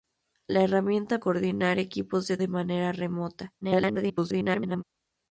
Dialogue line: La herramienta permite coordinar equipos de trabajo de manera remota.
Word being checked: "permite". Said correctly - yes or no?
no